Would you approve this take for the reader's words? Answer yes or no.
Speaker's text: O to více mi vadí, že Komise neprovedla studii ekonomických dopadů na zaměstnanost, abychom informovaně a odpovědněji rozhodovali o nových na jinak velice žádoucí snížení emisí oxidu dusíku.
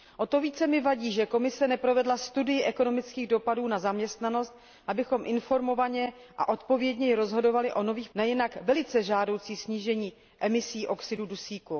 yes